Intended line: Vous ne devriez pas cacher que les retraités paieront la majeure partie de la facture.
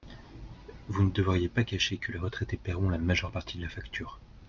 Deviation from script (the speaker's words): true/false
false